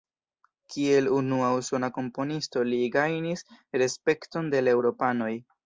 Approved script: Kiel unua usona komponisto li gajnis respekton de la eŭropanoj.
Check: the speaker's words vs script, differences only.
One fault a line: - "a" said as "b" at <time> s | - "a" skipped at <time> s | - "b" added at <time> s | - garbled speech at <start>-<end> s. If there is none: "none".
none